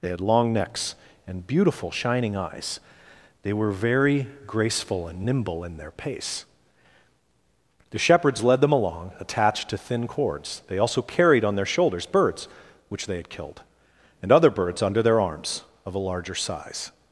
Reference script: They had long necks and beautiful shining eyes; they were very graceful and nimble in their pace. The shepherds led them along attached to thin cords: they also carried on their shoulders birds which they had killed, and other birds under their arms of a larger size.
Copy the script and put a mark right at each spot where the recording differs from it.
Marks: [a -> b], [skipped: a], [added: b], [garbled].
They had long necks and beautiful shining eyes; they were very graceful and nimble in their pace. The shepherds led them along attached to thin cords: they also carried on their shoulders birds which they had killed, and other birds under their arms of a larger size.